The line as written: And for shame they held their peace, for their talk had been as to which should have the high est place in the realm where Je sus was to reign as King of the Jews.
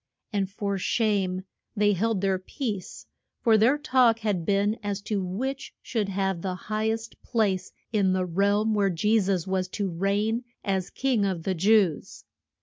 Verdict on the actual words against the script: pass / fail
pass